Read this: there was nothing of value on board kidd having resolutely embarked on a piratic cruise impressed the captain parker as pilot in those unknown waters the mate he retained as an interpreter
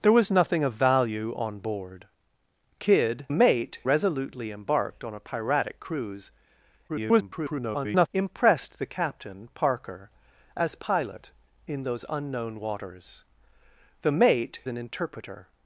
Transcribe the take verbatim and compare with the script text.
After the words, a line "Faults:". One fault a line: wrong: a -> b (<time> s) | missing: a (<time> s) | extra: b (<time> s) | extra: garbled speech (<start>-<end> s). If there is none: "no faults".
there was nothing of value on board kidd mate resolutely embarked on a piratic cruise [garbled] impressed the captain parker as pilot in those unknown waters the mate an interpreter
Faults:
wrong: having -> mate (3.3 s)
extra: garbled speech (6.9-8.1 s)
missing: he retained as (14.6 s)